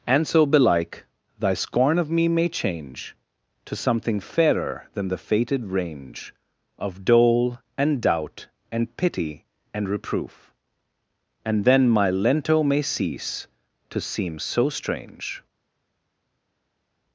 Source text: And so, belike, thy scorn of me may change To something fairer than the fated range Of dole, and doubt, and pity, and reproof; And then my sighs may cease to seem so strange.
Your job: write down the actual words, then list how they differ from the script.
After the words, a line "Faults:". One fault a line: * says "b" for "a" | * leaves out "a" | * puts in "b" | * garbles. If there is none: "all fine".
And so, belike, thy scorn of me may change To something fairer than the fated range Of dole, and doubt, and pity, and reproof; And then my lento may cease to seem so strange.
Faults:
* says "lento" for "sighs"